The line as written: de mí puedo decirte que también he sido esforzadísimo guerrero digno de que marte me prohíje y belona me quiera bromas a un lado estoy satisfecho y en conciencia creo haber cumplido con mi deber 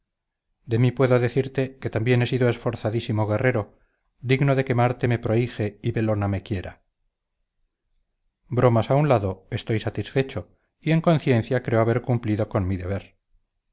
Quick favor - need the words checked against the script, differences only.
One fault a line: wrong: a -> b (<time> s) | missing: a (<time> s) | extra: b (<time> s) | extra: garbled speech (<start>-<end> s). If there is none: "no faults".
no faults